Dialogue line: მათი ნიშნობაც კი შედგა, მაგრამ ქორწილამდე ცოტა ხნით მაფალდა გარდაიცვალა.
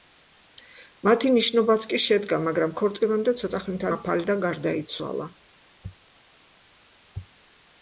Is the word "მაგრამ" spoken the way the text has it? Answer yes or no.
yes